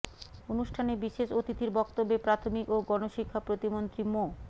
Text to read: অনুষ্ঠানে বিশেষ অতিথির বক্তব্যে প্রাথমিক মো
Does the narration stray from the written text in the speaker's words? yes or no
yes